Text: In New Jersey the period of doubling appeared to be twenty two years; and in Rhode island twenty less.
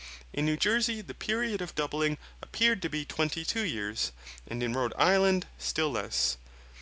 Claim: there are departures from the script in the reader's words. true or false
true